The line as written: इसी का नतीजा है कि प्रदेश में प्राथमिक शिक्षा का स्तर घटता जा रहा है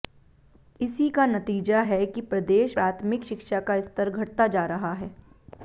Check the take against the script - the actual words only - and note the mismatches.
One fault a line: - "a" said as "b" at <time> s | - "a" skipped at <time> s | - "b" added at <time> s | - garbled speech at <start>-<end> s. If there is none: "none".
- "में" skipped at 2.8 s